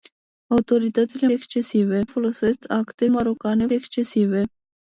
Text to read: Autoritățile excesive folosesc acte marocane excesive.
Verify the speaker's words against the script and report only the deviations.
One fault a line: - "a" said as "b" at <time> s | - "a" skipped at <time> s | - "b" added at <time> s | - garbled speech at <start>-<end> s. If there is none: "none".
none